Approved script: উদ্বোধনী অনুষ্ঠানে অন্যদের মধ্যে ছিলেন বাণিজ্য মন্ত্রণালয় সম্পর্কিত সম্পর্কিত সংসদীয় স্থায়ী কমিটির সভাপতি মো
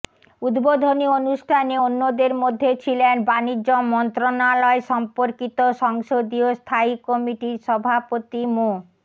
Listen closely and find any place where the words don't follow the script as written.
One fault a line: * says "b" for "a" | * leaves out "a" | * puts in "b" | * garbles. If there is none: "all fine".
* leaves out "সম্পর্কিত"